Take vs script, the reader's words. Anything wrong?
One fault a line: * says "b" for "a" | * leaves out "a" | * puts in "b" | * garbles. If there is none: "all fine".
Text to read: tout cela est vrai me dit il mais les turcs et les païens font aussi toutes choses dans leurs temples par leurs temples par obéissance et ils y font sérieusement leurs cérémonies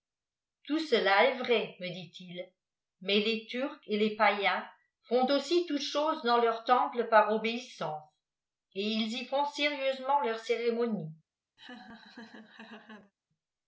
* leaves out "leurs temples par"